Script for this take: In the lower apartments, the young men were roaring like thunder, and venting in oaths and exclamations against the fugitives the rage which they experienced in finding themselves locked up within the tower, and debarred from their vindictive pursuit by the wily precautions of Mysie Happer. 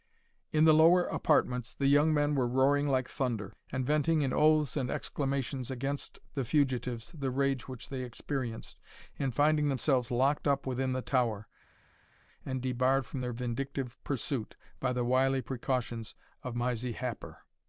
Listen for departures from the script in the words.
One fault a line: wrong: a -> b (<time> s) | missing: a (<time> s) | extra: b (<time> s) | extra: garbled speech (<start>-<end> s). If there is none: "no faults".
no faults